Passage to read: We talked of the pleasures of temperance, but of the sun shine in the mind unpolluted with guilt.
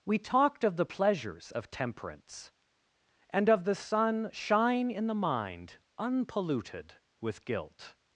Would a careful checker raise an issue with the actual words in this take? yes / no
yes